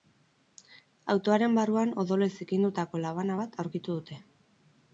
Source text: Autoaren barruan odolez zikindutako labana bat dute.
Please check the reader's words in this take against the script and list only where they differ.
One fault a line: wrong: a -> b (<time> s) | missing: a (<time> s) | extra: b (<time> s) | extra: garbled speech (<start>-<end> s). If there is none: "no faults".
extra: aurkitu (3.6 s)